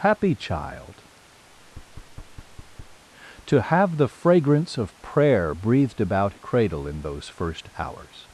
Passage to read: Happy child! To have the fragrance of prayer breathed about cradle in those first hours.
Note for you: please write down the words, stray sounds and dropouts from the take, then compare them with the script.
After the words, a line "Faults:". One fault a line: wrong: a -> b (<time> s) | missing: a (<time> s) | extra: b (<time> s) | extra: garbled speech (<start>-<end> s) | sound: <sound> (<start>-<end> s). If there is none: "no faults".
Happy child! To have the fragrance of prayer breathed about cradle in those first hours.
Faults:
sound: thud (1.5-3.0 s)